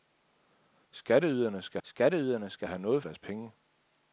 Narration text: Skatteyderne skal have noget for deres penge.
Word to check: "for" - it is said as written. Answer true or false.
false